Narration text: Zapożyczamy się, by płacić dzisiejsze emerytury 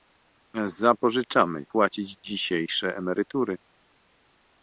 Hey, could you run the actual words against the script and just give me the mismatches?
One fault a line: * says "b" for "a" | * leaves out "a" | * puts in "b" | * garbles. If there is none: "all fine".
* leaves out "się by"